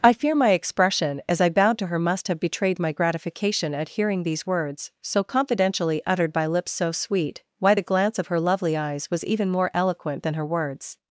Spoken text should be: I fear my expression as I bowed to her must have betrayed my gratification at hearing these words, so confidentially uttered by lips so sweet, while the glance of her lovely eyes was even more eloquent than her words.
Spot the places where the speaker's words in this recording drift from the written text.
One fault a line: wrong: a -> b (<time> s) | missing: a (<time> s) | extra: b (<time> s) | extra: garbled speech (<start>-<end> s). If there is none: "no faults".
wrong: while -> why (7.6 s)